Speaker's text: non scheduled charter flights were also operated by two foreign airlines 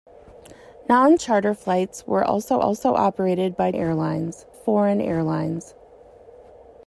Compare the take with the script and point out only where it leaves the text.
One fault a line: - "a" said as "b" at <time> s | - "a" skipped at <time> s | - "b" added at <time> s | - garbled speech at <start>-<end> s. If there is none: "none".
- "scheduled" skipped at 1.2 s
- "also" added at 2.6 s
- "two" said as "airlines" at 3.7 s